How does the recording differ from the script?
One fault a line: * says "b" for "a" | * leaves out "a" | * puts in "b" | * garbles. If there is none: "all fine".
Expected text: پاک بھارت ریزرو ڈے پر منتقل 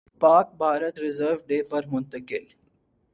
all fine